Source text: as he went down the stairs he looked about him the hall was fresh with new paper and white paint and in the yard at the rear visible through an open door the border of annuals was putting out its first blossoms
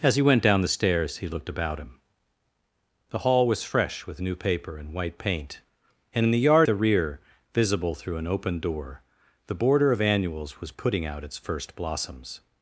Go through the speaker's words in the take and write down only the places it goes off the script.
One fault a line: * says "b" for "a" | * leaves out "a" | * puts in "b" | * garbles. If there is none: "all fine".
* leaves out "at"